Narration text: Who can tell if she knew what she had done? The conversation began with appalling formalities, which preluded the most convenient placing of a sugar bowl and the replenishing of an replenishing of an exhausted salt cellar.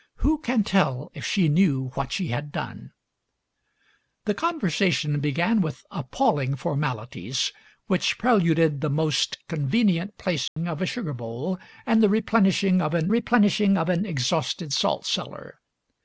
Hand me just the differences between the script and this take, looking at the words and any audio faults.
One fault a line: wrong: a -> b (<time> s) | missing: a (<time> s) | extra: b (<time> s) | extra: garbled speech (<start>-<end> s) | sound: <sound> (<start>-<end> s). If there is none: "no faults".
sound: dropout (10.5-10.6 s)